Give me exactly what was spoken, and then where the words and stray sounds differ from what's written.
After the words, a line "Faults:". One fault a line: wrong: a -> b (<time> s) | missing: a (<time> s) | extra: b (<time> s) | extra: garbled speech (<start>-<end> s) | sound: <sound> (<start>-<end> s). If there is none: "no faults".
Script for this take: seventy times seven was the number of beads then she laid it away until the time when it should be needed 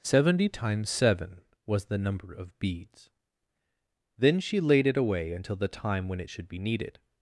seventy times seven was the number of beads then she laid it away until the time when it should be needed
Faults:
no faults